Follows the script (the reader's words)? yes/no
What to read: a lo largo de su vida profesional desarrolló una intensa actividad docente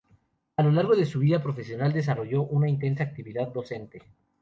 yes